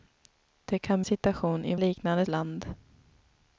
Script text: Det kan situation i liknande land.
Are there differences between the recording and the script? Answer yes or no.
no